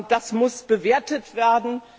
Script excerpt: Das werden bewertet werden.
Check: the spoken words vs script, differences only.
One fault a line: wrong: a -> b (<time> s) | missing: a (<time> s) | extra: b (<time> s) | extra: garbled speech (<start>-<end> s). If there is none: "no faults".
wrong: werden -> muss (0.3 s)